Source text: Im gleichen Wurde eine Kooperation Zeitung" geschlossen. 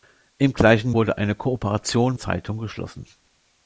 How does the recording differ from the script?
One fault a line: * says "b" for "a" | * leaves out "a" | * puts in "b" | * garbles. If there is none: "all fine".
all fine